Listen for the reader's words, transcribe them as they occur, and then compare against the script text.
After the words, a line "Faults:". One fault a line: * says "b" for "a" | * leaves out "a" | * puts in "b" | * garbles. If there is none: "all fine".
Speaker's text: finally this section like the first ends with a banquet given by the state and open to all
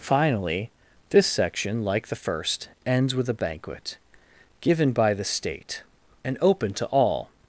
finally this section like the first ends with a banquet given by the state and open to all
Faults:
all fine